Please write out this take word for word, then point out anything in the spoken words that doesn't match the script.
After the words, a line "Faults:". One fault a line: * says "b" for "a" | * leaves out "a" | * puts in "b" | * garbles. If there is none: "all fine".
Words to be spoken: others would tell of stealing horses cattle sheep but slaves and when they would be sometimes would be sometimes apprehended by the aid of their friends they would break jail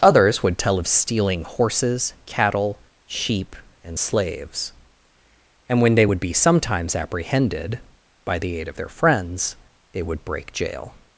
others would tell of stealing horses cattle sheep and slaves and when they would be sometimes apprehended by the aid of their friends they would break jail
Faults:
* says "and" for "but"
* leaves out "would be sometimes"